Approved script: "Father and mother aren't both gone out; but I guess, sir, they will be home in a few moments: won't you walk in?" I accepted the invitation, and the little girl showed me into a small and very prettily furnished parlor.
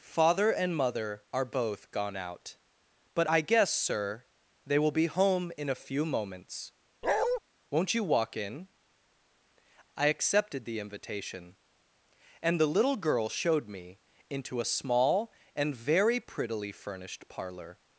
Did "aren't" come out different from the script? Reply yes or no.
yes